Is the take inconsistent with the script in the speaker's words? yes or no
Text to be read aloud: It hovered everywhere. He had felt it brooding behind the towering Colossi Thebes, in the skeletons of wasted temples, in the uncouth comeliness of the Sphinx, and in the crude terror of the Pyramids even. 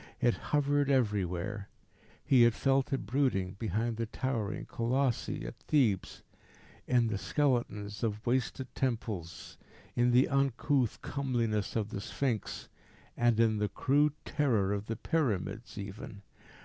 yes